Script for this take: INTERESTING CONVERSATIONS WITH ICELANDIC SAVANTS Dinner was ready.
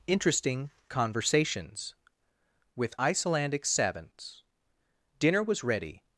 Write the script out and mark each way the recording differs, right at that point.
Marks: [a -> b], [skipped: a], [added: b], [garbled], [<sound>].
INTERESTING CONVERSATIONS WITH ICELANDIC SAVANTS Dinner was ready.